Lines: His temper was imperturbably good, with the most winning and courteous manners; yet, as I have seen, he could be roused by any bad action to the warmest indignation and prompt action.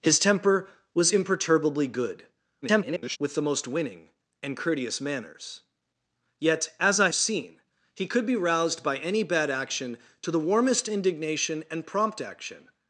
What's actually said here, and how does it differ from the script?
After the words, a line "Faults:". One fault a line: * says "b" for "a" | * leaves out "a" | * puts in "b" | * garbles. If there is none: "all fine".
His temper was imperturbably good, [garbled] with the most winning and courteous manners; yet, as I seen, he could be roused by any bad action to the warmest indignation and prompt action.
Faults:
* garbles
* leaves out "have"